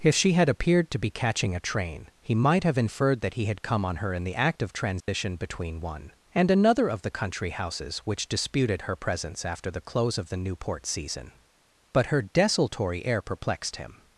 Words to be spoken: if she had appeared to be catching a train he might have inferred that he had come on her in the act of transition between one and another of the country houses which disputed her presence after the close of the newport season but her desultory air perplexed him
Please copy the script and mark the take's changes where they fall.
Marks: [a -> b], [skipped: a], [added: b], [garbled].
if she had appeared to be catching a train he might have inferred that he had come on her in the act of transition between one and another of the country houses which disputed her presence after the close of the newport season but her desultory air perplexed him